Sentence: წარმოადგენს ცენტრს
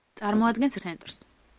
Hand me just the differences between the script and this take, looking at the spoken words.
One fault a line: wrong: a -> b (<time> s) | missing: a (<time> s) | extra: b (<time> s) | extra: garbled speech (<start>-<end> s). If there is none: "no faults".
no faults